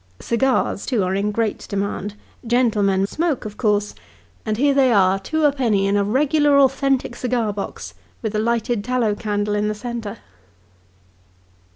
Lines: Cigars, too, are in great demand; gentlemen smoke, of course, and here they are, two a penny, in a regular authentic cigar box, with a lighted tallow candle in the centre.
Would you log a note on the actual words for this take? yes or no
no